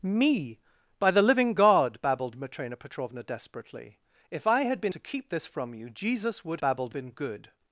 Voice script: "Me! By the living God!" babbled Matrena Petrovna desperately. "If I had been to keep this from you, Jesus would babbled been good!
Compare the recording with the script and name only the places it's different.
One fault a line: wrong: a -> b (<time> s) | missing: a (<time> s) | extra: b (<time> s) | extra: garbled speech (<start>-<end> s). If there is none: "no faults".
no faults